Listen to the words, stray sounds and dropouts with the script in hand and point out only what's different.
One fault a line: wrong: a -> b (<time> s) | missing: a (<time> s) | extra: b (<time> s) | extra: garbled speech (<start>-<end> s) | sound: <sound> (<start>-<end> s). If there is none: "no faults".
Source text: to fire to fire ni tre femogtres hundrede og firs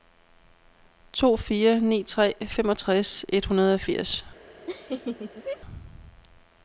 missing: to fire (1.8 s)
extra: et (3.3 s)
sound: laugh (4.7-5.6 s)